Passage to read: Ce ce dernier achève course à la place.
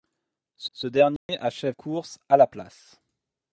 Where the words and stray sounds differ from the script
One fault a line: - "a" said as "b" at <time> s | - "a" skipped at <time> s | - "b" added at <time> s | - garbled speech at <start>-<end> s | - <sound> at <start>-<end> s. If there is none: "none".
- dropout at 1.2-1.3 s